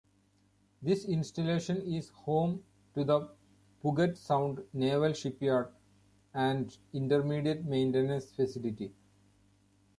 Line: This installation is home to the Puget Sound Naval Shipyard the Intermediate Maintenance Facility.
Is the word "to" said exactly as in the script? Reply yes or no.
yes